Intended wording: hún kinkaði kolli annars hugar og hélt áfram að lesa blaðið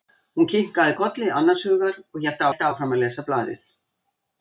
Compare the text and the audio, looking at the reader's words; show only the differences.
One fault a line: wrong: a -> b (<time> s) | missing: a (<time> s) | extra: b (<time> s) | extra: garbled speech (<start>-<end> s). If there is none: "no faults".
extra: hélt (2.5 s)